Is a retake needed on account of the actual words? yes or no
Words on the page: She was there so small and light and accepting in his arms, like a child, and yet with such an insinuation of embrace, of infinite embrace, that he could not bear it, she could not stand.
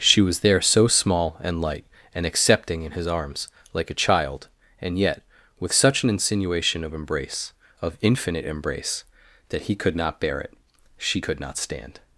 no